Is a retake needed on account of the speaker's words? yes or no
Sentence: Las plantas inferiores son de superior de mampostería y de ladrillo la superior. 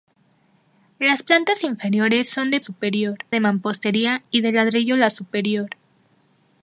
no